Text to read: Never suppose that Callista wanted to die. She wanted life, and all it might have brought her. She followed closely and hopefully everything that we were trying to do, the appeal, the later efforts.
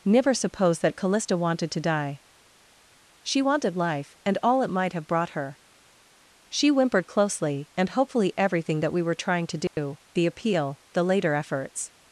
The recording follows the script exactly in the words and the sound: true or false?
false